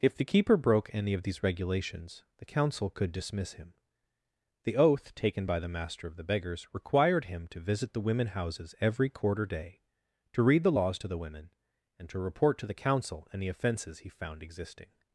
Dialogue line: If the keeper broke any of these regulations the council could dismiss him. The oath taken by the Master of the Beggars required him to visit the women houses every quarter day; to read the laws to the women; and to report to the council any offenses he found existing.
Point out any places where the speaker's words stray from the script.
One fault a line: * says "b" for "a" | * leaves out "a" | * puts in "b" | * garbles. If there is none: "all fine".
all fine